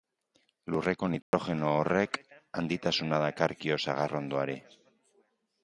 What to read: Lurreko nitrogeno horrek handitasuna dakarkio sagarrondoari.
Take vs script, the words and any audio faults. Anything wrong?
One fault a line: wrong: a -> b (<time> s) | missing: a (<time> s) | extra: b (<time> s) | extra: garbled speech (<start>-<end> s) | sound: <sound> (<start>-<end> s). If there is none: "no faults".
sound: dropout (1.2-1.3 s)